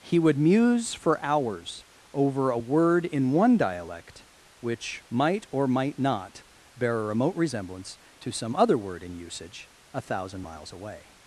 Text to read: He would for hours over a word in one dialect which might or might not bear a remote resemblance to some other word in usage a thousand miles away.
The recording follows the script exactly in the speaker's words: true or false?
false